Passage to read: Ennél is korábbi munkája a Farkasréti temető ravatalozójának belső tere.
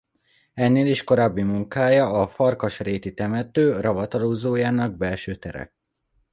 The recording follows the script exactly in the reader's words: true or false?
true